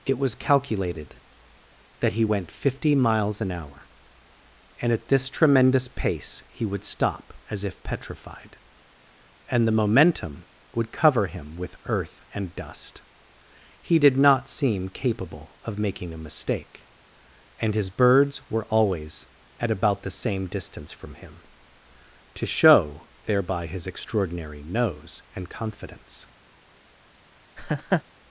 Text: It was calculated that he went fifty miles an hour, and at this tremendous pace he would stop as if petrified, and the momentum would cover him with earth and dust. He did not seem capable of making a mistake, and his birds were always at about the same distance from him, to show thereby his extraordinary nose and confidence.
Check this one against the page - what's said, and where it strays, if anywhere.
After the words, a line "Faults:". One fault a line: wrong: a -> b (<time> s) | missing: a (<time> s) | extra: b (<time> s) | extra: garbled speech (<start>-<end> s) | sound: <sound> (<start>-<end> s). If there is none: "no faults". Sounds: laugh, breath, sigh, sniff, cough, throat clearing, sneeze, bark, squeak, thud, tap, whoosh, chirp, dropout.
It was calculated that he went fifty miles an hour, and at this tremendous pace he would stop as if petrified, and the momentum would cover him with earth and dust. He did not seem capable of making a mistake, and his birds were always at about the same distance from him, to show thereby his extraordinary nose and confidence.
Faults:
sound: laugh (27.6-28.0 s)